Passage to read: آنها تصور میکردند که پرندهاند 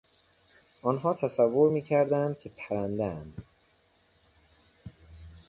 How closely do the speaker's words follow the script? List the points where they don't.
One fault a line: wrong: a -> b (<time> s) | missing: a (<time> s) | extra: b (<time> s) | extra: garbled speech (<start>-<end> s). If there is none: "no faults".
no faults